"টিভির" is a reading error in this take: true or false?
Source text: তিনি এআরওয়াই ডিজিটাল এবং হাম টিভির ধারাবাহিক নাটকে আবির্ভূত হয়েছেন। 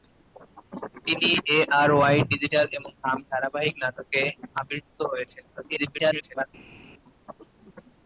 true